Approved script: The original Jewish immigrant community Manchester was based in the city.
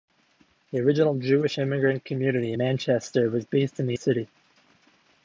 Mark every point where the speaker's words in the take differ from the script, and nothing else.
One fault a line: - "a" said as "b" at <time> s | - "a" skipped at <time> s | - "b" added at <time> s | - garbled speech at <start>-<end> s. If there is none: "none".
none